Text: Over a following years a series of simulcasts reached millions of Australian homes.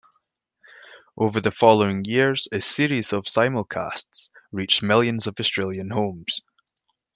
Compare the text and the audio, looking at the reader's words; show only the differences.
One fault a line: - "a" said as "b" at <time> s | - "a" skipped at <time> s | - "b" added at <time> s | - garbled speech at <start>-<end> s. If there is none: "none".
- "a" said as "the" at 1.4 s